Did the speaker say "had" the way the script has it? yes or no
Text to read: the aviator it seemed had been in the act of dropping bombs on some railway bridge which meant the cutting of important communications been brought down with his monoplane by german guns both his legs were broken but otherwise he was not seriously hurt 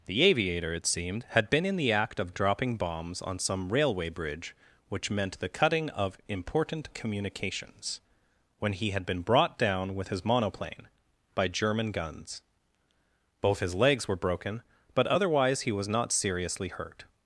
yes